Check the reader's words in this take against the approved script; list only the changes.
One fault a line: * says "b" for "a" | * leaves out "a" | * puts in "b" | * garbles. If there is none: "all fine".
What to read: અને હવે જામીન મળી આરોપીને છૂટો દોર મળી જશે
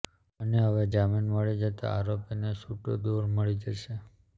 * puts in "જતા"